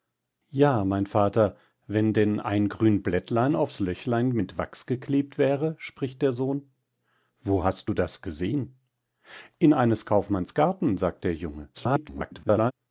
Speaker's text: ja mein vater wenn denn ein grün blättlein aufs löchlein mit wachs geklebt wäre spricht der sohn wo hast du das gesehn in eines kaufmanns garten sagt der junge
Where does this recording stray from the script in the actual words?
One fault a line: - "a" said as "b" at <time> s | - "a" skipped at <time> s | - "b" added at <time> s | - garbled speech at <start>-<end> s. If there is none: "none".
- garbled speech at 11.7-12.7 s